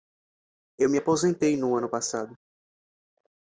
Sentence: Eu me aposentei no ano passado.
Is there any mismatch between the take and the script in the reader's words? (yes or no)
no